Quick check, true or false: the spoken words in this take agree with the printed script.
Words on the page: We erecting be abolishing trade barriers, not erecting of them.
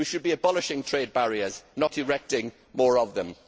false